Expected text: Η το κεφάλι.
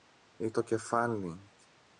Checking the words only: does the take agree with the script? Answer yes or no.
yes